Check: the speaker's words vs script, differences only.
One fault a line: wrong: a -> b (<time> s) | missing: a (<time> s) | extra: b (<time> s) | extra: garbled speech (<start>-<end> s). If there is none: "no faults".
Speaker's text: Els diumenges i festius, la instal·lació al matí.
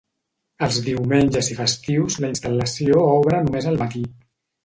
extra: obre només (3.2 s)